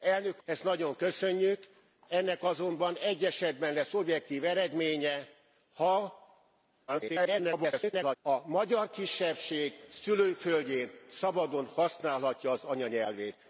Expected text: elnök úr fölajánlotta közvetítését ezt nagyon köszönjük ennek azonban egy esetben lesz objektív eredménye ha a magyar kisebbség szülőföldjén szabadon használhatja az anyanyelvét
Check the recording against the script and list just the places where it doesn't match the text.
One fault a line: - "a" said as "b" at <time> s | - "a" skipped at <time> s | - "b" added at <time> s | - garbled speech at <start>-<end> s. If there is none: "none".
- "úr fölajánlotta közvetítését" skipped at 0.4 s
- garbled speech at 6.9-8.2 s